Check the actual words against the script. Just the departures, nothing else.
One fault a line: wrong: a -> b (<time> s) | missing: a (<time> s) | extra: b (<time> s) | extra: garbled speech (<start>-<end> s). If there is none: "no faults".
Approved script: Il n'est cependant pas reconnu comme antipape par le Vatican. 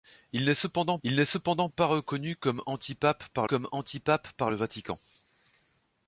extra: il n'est cependant (1.0 s)
extra: comme antipape par (3.4 s)